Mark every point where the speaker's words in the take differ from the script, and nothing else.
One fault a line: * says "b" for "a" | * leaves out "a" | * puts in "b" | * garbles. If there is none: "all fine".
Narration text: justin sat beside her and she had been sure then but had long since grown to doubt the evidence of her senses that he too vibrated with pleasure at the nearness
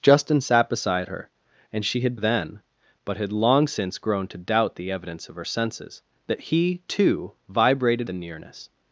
* leaves out "been sure"
* leaves out "with pleasure at"